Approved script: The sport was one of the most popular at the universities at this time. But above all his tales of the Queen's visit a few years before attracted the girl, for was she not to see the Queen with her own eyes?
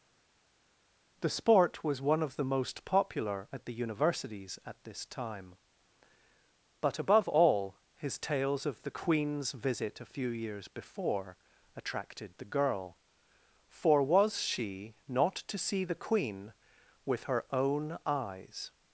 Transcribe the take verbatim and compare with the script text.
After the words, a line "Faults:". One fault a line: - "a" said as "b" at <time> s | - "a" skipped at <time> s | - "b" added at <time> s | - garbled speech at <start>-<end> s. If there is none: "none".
The sport was one of the most popular at the universities at this time. But above all his tales of the Queen's visit a few years before attracted the girl, for was she not to see the Queen with her own eyes?
Faults:
none